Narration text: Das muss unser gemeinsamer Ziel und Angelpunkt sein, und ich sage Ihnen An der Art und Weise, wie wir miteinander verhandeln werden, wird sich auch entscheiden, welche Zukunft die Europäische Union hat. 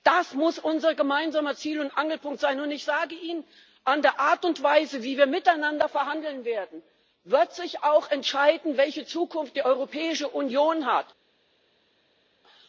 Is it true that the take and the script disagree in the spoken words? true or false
false